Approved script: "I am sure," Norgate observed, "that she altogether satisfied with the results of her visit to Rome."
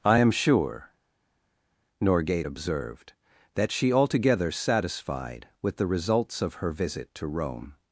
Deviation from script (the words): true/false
false